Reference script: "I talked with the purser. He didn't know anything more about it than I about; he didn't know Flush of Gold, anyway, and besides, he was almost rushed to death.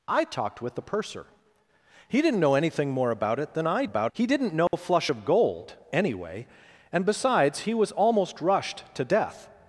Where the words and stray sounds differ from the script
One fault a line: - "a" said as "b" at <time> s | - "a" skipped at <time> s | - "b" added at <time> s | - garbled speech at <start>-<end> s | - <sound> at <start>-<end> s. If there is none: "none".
- dropout at 4.7-4.7 s